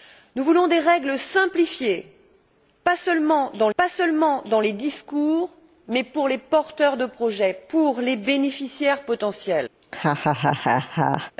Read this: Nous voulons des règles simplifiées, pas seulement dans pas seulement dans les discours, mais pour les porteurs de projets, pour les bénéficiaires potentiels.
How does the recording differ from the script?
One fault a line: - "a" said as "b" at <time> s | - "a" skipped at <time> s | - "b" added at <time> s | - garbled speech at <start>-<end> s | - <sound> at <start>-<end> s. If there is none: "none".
- laugh at 9.8-11.3 s